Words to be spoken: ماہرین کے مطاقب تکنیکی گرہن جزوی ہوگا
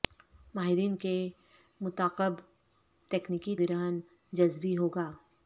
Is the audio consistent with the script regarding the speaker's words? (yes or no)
yes